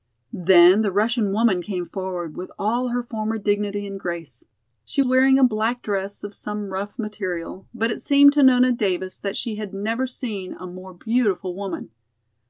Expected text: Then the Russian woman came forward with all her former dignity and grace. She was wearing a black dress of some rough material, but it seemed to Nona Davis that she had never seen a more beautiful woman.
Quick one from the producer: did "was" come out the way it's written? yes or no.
no